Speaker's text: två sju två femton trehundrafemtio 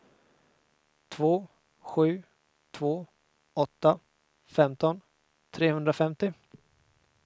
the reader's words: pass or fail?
fail